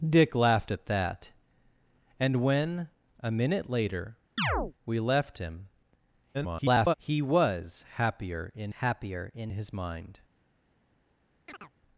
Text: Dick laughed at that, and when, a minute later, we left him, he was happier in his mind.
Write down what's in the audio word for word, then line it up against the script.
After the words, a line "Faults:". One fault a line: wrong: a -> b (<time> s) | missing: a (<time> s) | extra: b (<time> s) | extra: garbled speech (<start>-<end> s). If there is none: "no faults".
Dick laughed at that, and when, a minute later, we left him, [garbled] he was happier in happier in his mind.
Faults:
extra: garbled speech (6.3-6.9 s)
extra: happier in (8.8 s)